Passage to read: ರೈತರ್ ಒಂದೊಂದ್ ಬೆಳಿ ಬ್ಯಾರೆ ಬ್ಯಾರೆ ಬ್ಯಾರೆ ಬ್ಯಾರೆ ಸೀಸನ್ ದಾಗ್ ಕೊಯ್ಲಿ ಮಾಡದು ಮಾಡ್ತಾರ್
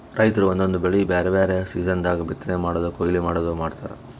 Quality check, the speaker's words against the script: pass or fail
fail